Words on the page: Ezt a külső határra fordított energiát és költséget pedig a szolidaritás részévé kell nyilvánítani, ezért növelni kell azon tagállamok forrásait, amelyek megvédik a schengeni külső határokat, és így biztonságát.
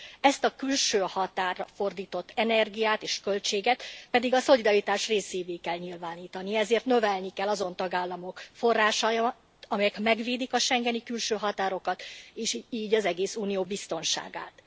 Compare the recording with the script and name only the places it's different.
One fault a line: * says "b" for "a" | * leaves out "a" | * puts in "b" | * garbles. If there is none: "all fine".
* puts in "az egész Unió"